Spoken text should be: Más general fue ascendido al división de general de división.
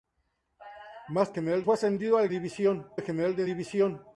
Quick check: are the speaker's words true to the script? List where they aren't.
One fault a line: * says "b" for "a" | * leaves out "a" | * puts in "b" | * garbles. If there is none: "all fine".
all fine